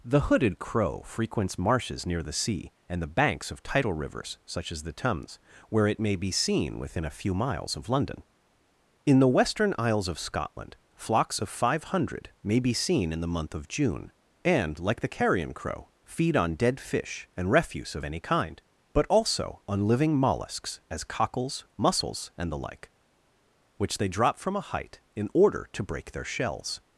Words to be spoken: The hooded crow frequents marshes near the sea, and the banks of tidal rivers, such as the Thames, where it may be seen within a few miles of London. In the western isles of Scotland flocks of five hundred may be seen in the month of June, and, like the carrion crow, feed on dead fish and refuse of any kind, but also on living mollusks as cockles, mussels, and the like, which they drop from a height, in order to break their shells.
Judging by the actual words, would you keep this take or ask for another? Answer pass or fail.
pass